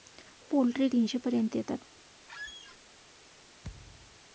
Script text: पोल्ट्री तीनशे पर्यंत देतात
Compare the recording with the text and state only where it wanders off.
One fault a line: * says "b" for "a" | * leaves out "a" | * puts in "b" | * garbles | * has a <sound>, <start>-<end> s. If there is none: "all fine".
* has a squeak, 2.3-2.8 s
* has a thud, 3.6-4.2 s